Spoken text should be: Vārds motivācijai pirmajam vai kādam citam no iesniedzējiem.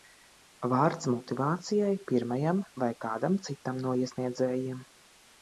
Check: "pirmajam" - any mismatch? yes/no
no